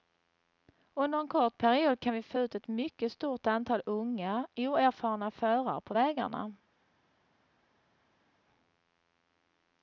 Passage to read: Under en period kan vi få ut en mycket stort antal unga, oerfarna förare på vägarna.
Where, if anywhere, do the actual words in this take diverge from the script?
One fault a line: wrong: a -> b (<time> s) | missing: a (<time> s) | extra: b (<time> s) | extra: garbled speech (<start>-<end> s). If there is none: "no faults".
extra: kort (1.3 s)
wrong: en -> ett (2.5 s)